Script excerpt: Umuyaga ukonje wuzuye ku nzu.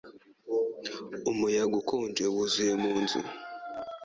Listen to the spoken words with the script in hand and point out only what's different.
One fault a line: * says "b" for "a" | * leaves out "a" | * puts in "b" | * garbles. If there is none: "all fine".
* says "mu" for "ku"